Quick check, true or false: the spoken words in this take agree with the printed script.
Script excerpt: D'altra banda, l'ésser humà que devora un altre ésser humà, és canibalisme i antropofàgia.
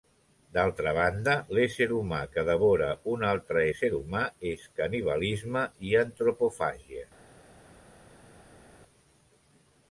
true